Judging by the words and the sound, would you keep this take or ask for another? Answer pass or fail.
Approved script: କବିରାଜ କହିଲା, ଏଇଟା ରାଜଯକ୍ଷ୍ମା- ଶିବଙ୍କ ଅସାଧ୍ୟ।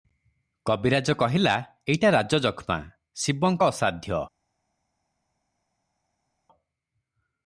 pass